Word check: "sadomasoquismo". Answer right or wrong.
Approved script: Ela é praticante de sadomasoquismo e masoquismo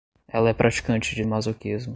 wrong